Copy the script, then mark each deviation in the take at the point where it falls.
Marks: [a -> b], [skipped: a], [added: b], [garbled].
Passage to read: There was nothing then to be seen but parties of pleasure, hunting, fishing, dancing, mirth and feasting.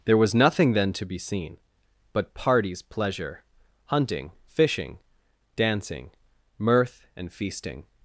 There was nothing then to be seen but parties [skipped: of] pleasure, hunting, fishing, dancing, mirth and feasting.